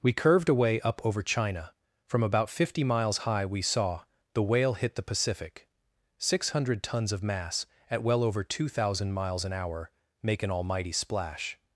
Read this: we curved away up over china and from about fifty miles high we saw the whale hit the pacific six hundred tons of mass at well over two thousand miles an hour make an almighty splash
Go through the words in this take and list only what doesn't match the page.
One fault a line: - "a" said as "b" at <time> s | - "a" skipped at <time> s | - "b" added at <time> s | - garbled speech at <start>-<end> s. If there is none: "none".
- "and" skipped at 1.7 s